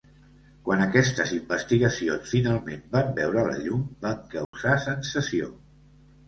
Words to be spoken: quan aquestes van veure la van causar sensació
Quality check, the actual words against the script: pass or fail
fail